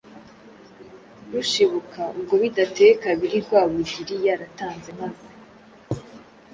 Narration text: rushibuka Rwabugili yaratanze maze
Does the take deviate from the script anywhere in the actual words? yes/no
yes